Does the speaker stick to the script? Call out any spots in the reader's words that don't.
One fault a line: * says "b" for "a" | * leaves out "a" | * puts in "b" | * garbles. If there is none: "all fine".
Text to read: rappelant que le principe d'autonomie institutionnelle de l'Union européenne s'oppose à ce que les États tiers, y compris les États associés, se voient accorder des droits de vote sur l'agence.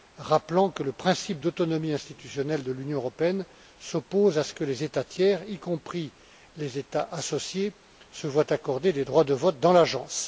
* says "dans" for "sur"